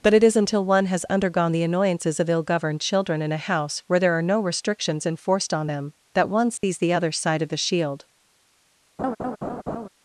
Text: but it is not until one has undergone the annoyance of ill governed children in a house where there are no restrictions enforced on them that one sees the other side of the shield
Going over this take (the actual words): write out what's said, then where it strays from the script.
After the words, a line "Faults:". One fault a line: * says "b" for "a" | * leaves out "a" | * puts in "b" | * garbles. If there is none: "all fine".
but it is until one has undergone the annoyances of ill governed children in a house where there are no restrictions enforced on them that one sees the other side of the shield
Faults:
* leaves out "not"
* says "annoyances" for "annoyance"